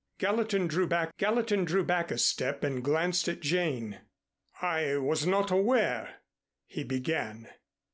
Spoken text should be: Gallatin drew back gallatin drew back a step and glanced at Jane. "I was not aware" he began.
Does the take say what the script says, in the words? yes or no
yes